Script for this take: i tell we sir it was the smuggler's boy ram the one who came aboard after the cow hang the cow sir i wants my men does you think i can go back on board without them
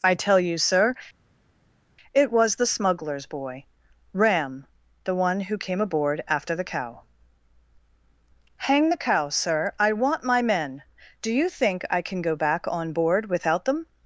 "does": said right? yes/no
no